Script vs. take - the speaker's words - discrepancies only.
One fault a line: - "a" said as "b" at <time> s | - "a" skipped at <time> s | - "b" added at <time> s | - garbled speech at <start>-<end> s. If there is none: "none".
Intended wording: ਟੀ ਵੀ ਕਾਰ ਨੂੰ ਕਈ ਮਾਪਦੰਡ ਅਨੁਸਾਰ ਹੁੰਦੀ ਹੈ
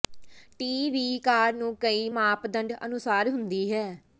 none